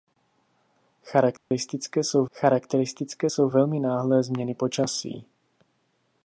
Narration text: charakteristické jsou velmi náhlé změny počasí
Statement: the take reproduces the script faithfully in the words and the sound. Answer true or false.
false